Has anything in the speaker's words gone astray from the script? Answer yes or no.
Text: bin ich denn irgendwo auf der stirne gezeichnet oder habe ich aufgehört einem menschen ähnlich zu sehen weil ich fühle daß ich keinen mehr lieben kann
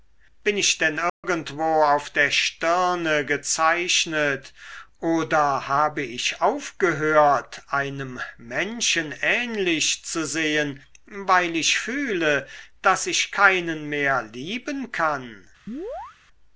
no